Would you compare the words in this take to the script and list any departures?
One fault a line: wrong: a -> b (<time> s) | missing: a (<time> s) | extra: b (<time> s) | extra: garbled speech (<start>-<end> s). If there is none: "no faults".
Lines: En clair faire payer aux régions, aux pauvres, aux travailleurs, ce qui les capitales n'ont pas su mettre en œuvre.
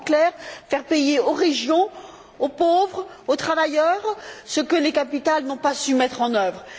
wrong: qui -> que (4.6 s)